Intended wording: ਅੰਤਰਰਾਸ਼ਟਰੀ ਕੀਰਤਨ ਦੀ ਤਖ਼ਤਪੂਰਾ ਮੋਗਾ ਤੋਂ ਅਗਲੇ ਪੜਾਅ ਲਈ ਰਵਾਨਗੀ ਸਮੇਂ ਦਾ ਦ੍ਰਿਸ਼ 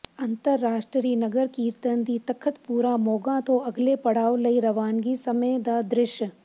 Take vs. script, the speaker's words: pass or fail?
fail